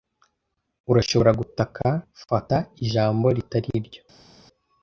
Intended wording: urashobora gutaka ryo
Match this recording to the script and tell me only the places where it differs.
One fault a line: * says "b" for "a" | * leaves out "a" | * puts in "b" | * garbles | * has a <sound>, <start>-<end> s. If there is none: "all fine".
* puts in "fata ijambo ritari"